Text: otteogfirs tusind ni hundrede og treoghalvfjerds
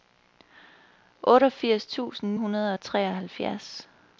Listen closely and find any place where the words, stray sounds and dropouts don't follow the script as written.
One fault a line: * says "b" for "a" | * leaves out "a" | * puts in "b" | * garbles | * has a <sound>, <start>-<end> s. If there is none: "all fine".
* leaves out "ni"